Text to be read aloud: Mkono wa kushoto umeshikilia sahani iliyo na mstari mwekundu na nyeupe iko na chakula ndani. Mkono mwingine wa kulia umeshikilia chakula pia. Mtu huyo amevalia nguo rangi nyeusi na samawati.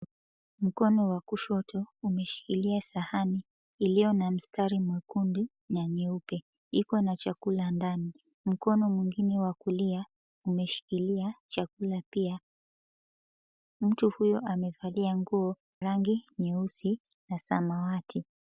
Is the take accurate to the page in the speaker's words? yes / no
yes